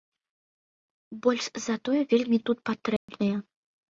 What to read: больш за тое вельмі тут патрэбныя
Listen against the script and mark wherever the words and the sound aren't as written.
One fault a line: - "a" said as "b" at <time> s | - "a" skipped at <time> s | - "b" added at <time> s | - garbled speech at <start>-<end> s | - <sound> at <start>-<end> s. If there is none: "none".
- dropout at 3.0-3.1 s